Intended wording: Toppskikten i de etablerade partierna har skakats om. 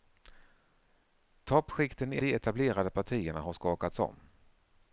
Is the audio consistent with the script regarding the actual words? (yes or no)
yes